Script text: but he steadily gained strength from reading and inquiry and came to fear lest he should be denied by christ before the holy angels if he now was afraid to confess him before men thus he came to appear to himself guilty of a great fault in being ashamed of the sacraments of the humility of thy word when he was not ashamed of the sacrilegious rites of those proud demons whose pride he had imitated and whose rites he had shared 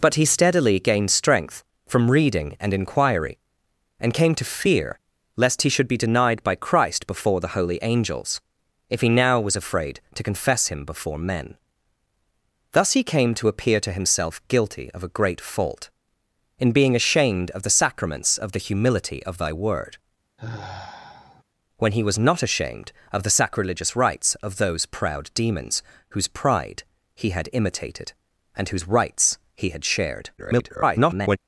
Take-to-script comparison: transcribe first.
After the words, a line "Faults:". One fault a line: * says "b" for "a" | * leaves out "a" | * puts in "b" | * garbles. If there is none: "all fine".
but he steadily gained strength from reading and inquiry and came to fear lest he should be denied by christ before the holy angels if he now was afraid to confess him before men thus he came to appear to himself guilty of a great fault in being ashamed of the sacraments of the humility of thy word when he was not ashamed of the sacrilegious rites of those proud demons whose pride he had imitated and whose rites he had shared [garbled]
Faults:
* garbles